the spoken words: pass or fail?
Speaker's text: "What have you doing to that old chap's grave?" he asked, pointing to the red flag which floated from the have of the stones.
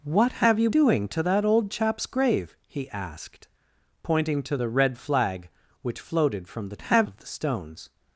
pass